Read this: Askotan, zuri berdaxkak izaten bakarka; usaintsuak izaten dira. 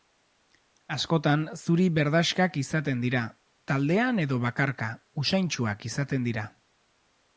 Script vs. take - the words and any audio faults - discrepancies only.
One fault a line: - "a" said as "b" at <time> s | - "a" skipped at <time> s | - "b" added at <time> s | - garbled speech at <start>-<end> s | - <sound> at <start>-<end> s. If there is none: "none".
- "dira taldean edo" added at 3.0 s